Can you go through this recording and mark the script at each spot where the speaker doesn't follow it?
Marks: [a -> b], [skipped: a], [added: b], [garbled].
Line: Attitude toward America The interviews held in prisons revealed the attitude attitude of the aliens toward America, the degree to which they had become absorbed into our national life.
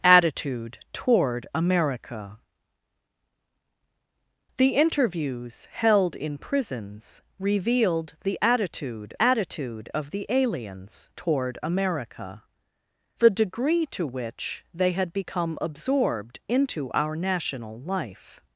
Attitude toward America The interviews held in prisons revealed the attitude attitude of the aliens toward America, the degree to which they had become absorbed into our national life.